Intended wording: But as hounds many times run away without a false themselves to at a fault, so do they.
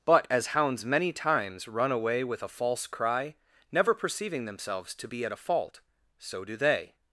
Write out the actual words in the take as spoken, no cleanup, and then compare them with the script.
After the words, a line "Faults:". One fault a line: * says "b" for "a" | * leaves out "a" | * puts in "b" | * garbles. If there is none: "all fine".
But as hounds many times run away with a false cry, never perceiving themselves to be at a fault, so do they.
Faults:
* says "with" for "without"
* puts in "cry never perceiving"
* puts in "be"